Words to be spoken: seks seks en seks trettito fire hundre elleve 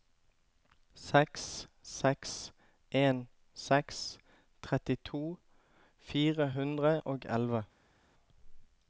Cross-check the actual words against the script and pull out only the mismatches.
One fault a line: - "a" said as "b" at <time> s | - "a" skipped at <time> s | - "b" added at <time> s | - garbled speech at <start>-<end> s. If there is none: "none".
- "og" added at 7.0 s